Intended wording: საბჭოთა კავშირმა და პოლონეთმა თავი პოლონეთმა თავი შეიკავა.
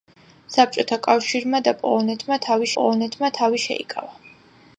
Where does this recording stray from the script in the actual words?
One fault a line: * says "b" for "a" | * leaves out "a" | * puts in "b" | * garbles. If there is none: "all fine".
all fine